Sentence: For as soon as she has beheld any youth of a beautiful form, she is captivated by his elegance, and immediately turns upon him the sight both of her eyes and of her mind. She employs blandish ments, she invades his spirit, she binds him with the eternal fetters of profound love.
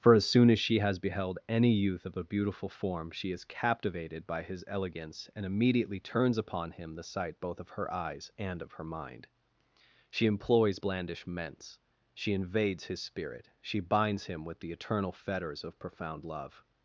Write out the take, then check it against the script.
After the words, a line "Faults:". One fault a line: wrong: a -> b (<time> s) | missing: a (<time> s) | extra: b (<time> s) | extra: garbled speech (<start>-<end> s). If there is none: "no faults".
For as soon as she has beheld any youth of a beautiful form, she is captivated by his elegance, and immediately turns upon him the sight both of her eyes and of her mind. She employs blandish ments, she invades his spirit, she binds him with the eternal fetters of profound love.
Faults:
no faults